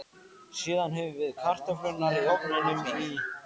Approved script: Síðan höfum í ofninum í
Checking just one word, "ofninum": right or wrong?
right